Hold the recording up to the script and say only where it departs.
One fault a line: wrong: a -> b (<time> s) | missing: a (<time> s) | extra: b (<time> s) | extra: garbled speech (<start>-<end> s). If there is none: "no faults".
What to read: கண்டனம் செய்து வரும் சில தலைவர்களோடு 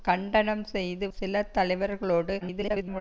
missing: வரும் (1.1 s)
extra: garbled speech (2.4-3.0 s)